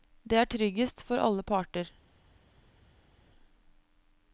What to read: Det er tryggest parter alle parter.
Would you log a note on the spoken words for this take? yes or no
yes